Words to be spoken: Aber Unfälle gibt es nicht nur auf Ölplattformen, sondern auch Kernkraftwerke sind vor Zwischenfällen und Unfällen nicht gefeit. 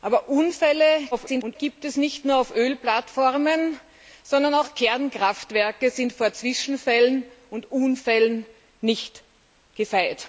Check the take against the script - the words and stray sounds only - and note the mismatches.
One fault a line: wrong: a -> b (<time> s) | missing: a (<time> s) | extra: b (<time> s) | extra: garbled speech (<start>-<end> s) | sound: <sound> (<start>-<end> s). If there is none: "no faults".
extra: garbled speech (1.1-1.6 s)